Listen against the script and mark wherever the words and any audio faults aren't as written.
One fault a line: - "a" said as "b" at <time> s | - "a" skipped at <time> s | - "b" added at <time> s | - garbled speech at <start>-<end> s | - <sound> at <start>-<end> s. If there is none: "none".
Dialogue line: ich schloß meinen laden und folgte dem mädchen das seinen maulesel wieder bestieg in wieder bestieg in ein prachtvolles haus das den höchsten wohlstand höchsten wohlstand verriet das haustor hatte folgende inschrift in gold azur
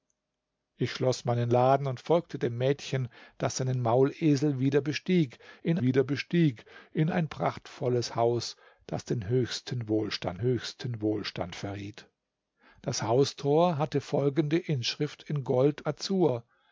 none